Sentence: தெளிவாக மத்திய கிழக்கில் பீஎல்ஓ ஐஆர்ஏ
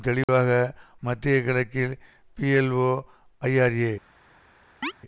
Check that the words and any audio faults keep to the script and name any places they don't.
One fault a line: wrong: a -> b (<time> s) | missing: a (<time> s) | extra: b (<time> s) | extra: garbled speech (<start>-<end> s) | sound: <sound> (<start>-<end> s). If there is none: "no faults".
sound: dropout (0.2-0.3 s)
sound: chirp (4.8-4.9 s)